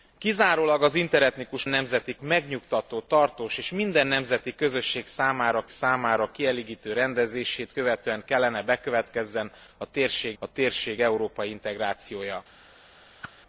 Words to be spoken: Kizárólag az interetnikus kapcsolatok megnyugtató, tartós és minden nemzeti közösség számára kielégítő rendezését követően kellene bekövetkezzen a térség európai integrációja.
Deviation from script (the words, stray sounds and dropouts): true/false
true